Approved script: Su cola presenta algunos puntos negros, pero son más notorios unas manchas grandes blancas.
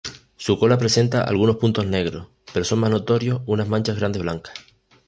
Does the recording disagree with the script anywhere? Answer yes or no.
no